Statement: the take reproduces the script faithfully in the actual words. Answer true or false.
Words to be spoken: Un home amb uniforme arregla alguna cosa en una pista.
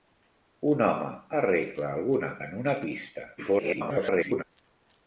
false